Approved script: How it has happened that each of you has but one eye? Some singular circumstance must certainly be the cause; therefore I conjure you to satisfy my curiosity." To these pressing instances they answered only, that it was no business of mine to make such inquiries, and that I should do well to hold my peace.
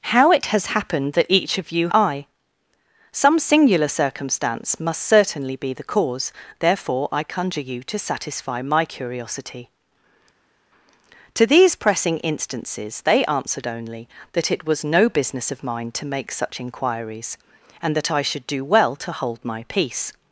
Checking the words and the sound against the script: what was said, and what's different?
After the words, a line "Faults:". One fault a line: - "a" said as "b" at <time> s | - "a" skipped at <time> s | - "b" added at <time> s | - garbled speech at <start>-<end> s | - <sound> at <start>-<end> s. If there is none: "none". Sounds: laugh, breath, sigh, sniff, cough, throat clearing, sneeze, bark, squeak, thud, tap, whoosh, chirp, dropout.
How it has happened that each of you eye? Some singular circumstance must certainly be the cause; therefore I conjure you to satisfy my curiosity." To these pressing instances they answered only, that it was no business of mine to make such inquiries, and that I should do well to hold my peace.
Faults:
- "has but one" skipped at 1.9 s